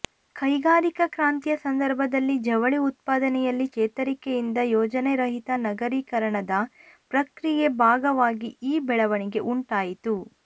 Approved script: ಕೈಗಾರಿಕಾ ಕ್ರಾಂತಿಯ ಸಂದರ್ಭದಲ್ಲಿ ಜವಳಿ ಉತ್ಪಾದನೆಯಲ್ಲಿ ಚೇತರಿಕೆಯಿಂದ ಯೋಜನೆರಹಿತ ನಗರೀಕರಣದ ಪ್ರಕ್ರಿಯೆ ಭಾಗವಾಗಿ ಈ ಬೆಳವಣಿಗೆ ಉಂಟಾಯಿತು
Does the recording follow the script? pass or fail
pass